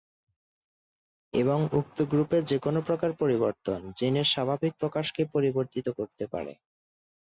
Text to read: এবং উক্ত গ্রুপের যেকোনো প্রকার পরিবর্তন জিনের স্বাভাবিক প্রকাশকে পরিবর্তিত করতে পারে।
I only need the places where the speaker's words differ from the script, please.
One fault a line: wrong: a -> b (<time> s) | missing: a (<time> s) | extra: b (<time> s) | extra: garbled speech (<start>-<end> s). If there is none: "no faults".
no faults